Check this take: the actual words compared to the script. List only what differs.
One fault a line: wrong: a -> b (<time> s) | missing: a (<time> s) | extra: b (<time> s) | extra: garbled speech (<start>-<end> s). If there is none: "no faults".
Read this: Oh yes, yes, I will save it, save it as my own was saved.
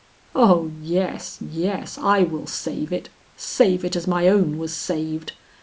no faults